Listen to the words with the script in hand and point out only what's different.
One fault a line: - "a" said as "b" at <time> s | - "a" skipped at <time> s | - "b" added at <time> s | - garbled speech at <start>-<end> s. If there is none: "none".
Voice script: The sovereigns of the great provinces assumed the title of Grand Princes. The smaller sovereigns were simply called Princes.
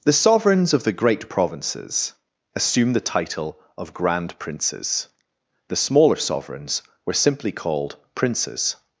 none